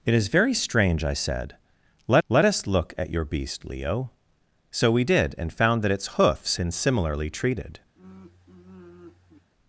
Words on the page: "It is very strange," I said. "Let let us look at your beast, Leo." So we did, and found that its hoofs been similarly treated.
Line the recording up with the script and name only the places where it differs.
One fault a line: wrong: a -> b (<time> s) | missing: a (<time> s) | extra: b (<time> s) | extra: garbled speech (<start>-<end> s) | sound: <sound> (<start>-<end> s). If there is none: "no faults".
sound: sigh (8.0-9.5 s)